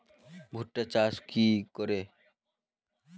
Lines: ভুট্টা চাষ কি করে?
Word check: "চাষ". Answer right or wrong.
right